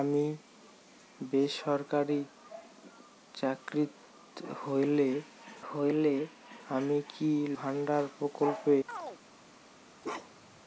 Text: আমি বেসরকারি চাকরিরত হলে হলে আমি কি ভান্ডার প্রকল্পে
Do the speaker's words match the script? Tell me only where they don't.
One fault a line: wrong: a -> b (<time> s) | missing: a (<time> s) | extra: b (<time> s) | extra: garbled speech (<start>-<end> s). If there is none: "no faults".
no faults